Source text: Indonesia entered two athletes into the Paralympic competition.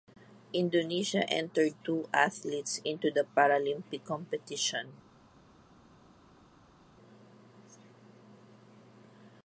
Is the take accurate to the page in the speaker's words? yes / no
yes